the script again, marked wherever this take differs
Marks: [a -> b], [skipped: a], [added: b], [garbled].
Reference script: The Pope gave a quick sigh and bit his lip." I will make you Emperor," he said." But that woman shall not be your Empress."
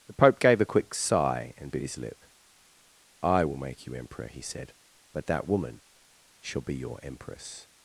The Pope gave a quick sigh and bit his lip." I will make you Emperor," he said." But that woman shall [skipped: not] be your Empress."